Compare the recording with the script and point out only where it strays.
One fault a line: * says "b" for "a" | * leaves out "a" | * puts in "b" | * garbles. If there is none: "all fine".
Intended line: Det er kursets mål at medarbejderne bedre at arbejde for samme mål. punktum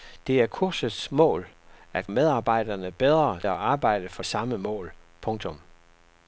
all fine